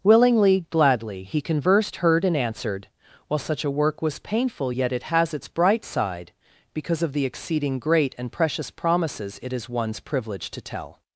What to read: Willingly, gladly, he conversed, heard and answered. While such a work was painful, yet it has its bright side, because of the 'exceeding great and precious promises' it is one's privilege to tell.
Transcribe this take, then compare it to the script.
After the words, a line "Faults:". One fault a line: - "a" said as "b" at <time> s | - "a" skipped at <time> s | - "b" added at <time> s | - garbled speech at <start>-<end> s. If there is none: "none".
Willingly, gladly, he conversed, heard and answered. While such a work was painful, yet it has its bright side, because of the 'exceeding great and precious promises' it is one's privilege to tell.
Faults:
none